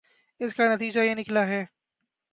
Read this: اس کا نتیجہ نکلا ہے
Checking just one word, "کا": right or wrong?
right